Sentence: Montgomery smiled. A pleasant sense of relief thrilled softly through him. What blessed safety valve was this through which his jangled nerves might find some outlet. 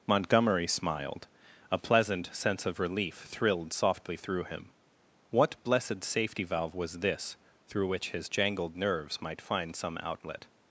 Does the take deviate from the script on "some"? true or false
false